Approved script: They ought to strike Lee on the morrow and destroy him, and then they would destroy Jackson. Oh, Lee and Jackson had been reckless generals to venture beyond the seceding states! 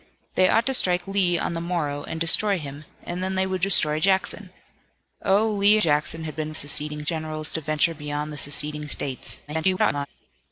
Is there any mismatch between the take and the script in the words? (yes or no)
yes